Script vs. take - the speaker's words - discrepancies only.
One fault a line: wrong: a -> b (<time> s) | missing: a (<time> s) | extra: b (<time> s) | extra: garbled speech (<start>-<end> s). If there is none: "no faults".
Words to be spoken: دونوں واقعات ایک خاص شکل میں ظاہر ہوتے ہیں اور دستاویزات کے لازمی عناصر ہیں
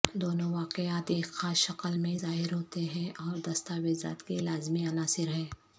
no faults